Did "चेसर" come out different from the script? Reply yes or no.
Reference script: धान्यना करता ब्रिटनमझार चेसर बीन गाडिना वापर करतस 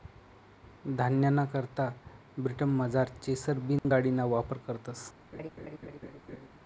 no